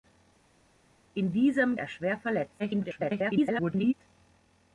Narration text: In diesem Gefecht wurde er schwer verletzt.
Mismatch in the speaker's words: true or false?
true